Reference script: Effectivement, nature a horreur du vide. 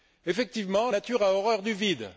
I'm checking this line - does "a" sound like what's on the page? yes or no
yes